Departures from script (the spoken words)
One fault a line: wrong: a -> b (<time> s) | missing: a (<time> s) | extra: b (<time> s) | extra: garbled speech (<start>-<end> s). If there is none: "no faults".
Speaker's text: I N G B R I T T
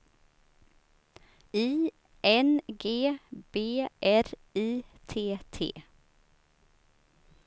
no faults